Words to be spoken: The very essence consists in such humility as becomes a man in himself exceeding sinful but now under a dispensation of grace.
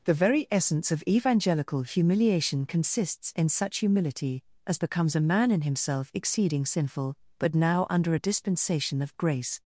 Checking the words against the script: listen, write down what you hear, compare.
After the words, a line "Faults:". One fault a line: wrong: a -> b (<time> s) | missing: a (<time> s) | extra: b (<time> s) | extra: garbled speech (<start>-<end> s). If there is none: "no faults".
The very essence of evangelical humiliation consists in such humility as becomes a man in himself exceeding sinful but now under a dispensation of grace.
Faults:
extra: of evangelical humiliation (0.9 s)